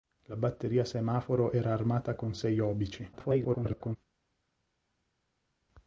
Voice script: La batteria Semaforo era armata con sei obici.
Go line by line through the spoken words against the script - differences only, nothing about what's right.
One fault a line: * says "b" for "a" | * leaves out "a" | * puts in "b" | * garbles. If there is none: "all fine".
* garbles